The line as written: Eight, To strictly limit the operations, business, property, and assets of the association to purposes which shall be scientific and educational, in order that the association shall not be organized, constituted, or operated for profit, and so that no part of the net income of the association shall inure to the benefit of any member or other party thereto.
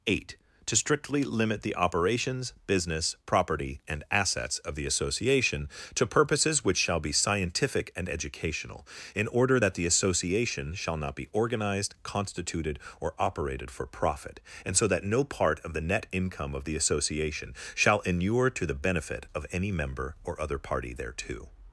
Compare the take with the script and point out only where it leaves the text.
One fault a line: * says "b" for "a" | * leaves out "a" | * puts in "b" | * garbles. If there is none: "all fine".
all fine